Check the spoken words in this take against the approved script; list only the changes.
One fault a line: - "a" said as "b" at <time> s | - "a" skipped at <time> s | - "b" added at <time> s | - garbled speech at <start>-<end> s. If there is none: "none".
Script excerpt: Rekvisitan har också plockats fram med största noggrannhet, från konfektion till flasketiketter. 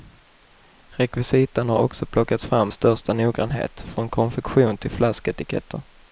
- "med" skipped at 2.7 s